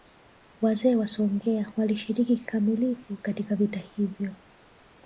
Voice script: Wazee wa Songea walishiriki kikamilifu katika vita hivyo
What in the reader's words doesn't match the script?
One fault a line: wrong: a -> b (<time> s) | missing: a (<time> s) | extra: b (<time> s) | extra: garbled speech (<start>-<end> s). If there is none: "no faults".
no faults